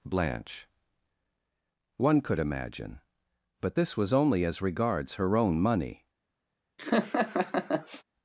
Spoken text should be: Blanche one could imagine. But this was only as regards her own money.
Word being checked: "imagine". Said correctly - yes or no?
yes